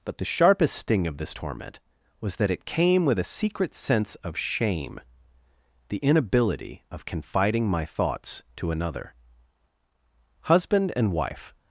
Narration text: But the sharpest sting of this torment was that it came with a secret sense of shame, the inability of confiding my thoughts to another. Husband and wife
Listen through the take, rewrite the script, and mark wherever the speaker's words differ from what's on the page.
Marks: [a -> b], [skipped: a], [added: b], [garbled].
But the sharpest sting of this torment was that it came with a secret sense of shame, the inability of confiding my thoughts to another. Husband and wife